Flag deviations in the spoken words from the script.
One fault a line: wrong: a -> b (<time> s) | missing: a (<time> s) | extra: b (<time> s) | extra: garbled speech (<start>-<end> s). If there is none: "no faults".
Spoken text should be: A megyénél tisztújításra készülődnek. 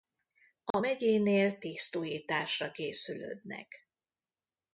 no faults